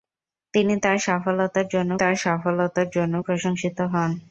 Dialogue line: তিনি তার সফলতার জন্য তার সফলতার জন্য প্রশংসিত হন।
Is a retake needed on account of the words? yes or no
no